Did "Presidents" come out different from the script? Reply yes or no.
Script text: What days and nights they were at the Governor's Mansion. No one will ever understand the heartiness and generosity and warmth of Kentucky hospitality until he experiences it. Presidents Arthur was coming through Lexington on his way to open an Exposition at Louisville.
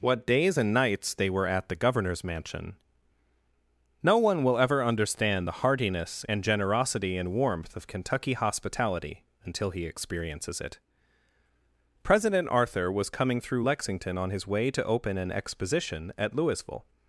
yes